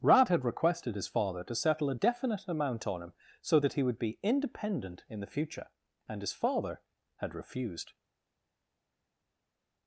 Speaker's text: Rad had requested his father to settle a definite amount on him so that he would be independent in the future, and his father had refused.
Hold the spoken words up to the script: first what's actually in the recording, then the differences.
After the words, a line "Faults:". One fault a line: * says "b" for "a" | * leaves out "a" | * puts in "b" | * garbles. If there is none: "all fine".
Rad had requested his father to settle a definite amount on him so that he would be independent in the future, and his father had refused.
Faults:
all fine